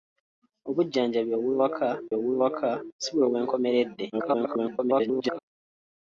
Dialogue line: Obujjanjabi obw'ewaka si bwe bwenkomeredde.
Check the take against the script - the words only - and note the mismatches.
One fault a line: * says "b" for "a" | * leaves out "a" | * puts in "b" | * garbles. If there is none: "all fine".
* puts in "obw'ewaka"
* garbles